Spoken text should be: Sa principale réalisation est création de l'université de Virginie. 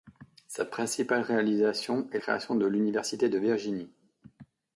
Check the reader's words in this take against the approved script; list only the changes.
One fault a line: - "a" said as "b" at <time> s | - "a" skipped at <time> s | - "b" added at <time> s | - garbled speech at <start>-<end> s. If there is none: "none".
none